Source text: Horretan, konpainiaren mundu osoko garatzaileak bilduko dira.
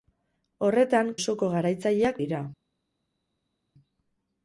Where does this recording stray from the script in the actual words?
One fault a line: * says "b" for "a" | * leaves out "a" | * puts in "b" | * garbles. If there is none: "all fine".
* leaves out "konpainiaren mundu"
* leaves out "bilduko"